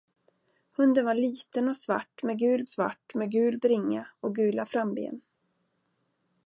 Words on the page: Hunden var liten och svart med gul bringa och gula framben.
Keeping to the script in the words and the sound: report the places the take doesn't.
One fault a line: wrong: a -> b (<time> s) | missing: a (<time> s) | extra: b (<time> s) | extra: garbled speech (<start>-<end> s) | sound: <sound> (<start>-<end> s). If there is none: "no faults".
extra: svart med gul (2.7 s)